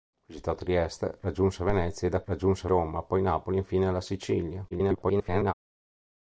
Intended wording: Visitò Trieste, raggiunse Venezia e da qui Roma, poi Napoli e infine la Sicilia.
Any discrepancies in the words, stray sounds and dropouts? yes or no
yes